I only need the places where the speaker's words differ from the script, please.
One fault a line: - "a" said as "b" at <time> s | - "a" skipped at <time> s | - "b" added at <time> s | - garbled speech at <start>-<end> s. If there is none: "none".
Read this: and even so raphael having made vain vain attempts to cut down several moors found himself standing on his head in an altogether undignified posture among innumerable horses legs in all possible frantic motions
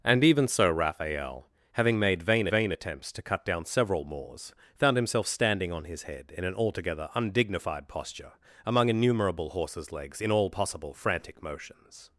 none